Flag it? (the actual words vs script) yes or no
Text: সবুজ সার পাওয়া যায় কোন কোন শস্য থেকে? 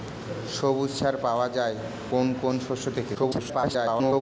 yes